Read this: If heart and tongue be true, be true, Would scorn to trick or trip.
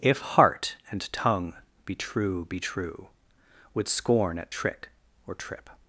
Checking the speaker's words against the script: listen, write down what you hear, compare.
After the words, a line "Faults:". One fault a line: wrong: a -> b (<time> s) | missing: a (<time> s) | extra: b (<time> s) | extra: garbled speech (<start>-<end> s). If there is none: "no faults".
If heart and tongue be true, be true, Would scorn at trick or trip.
Faults:
wrong: to -> at (4.4 s)